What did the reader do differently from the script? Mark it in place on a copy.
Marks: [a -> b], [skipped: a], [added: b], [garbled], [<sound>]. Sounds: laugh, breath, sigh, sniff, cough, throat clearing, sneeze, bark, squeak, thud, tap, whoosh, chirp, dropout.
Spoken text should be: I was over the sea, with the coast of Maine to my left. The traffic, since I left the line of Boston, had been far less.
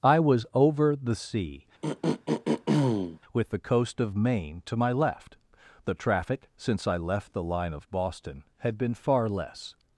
I was over the sea, [throat clearing] with the coast of Maine to my left. The traffic, since I left the line of Boston, had been far less.